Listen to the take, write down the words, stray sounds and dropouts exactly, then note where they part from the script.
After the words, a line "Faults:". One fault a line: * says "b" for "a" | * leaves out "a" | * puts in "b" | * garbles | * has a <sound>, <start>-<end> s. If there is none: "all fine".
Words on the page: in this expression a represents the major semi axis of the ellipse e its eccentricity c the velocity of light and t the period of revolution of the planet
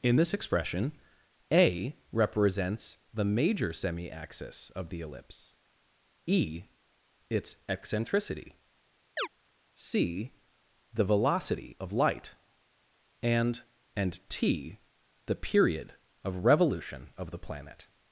in this expression a represents the major semi axis of the ellipse e its eccentricity c the velocity of light and and t the period of revolution of the planet
Faults:
* has a chirp, 9.2-9.3 s
* puts in "and"